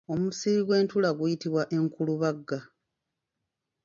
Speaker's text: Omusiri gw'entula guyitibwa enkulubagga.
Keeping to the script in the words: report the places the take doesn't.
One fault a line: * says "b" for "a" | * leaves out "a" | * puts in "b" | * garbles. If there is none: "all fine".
all fine